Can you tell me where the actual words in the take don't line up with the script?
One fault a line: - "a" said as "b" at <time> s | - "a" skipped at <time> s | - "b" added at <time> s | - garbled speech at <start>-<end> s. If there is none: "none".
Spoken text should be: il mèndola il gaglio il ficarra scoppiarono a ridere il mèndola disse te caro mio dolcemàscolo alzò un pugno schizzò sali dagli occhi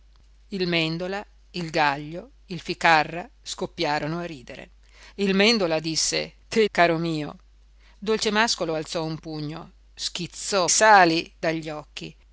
none